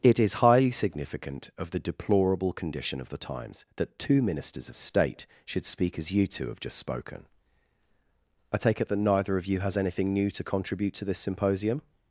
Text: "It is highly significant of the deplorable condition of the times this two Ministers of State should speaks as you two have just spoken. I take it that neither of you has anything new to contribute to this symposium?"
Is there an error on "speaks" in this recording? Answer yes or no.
yes